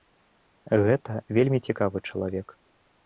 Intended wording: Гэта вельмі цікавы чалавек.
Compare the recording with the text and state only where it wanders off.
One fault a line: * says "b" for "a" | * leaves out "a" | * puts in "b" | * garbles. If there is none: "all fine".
all fine